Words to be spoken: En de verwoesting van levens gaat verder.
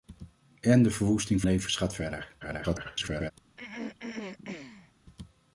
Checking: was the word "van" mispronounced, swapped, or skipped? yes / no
yes